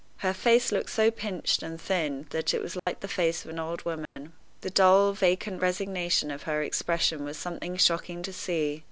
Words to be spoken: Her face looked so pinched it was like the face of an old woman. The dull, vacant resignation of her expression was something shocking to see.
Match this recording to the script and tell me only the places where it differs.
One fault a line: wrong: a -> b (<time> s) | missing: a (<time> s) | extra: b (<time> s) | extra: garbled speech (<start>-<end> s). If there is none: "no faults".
extra: and thin that (1.6 s)